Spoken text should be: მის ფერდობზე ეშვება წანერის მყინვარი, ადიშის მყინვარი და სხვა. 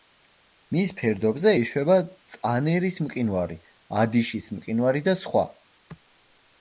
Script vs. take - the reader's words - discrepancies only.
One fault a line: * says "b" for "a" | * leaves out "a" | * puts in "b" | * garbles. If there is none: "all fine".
all fine